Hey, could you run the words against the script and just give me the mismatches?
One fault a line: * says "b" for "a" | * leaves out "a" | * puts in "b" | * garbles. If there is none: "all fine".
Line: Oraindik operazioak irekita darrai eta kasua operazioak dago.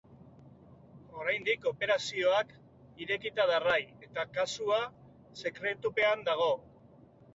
* says "sekretupean" for "operazioak"